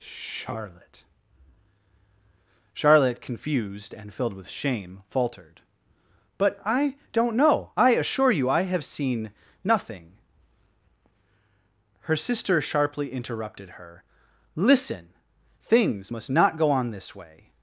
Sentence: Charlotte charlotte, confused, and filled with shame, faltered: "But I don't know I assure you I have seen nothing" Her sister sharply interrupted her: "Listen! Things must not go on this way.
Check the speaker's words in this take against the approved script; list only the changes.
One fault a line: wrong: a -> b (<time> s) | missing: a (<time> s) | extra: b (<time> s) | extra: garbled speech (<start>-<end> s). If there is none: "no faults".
no faults